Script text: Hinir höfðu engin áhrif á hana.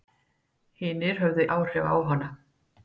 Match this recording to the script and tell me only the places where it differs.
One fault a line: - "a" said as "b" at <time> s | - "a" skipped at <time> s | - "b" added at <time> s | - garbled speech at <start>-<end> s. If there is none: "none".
- "engin" skipped at 1.4 s